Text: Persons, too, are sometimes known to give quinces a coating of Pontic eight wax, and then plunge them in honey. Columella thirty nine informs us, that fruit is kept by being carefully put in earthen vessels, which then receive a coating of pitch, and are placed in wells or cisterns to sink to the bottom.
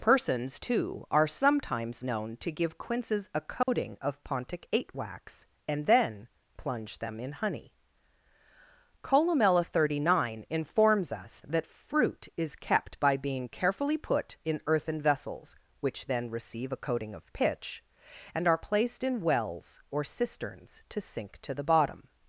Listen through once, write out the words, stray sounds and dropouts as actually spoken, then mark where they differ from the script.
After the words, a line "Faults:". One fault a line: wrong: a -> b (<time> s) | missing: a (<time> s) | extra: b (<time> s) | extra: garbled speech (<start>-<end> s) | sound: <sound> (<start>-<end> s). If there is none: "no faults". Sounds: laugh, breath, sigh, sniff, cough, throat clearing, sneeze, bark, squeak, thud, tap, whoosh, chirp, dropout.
Persons, too, are sometimes known to give quinces a coating of Pontic eight wax, and then plunge them in honey. Columella thirty nine informs us, that fruit is kept by being carefully put in earthen vessels, which then receive a coating of pitch, and are placed in wells or cisterns to sink to the bottom.
Faults:
sound: dropout (3.6-3.7 s)